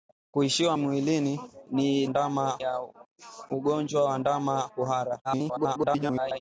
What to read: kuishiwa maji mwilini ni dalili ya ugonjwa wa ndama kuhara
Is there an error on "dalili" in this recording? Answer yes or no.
yes